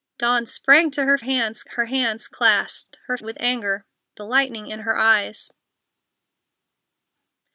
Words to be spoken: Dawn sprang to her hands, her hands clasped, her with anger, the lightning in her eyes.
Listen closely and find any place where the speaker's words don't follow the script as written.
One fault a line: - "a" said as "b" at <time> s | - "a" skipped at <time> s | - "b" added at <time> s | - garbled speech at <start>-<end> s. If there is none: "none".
none